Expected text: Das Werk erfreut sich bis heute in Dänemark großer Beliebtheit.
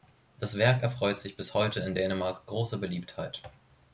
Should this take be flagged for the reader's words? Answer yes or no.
no